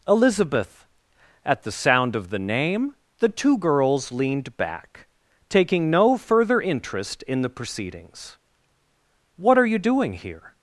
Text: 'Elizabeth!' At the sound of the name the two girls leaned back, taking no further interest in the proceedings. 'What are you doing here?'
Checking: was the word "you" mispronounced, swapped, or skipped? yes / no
no